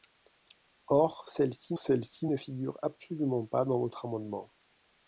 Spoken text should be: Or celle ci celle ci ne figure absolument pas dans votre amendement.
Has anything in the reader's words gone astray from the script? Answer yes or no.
no